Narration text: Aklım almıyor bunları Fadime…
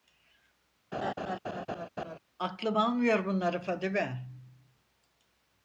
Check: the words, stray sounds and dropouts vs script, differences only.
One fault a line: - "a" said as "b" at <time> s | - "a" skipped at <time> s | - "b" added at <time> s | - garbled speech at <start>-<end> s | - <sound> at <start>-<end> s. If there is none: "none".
- laugh at 0.9-2.2 s